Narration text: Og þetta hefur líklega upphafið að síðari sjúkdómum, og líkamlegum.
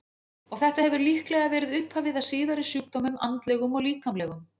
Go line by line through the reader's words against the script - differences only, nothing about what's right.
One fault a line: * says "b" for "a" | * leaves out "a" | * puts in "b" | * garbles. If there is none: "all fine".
* puts in "verið"
* puts in "andlegum"